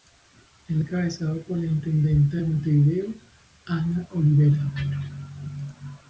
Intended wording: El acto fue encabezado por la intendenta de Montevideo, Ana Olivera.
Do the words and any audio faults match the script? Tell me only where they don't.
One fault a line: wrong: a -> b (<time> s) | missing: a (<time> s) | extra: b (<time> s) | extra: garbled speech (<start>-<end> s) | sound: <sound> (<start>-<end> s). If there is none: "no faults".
missing: acto fue (0.8 s)